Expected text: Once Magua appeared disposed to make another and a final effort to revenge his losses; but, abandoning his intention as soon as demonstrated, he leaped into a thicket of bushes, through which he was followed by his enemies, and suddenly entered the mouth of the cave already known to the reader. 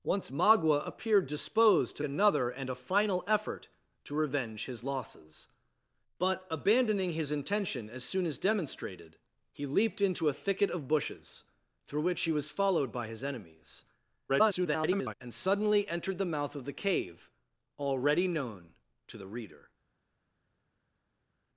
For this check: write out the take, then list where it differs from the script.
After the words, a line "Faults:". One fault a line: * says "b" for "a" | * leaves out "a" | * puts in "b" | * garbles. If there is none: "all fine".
Once Magua appeared disposed to another and a final effort to revenge his losses; but, abandoning his intention as soon as demonstrated, he leaped into a thicket of bushes, through which he was followed by his enemies, [garbled] and suddenly entered the mouth of the cave already known to the reader.
Faults:
* leaves out "make"
* garbles